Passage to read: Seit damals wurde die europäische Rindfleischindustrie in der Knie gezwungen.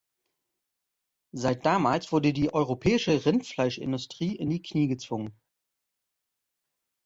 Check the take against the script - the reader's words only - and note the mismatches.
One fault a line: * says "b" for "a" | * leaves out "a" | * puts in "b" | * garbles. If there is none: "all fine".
* says "die" for "der"